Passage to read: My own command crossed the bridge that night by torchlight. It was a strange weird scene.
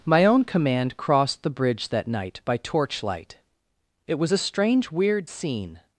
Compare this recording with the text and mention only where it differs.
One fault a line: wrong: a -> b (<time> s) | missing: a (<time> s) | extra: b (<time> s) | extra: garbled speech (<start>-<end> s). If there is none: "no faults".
no faults